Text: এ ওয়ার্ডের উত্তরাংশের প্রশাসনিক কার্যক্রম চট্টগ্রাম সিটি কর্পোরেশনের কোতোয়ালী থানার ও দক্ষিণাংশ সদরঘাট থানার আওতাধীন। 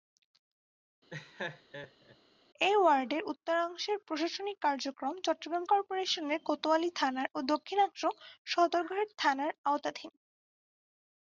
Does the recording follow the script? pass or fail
fail